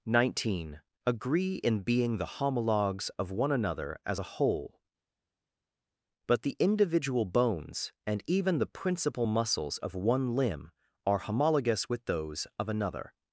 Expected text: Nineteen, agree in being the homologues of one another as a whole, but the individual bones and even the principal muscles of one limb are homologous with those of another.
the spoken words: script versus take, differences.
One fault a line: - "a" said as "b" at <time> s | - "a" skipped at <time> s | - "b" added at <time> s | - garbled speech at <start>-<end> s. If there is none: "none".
none